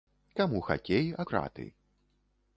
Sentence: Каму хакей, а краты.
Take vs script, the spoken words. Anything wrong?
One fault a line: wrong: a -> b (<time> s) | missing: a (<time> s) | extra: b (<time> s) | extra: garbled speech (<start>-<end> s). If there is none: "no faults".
no faults